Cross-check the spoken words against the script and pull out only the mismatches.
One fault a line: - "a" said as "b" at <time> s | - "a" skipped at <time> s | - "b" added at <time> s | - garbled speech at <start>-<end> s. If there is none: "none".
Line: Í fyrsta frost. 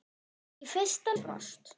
none